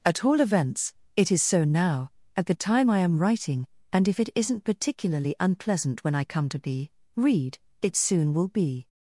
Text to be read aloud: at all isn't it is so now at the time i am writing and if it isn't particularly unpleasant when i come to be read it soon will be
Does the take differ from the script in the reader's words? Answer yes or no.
yes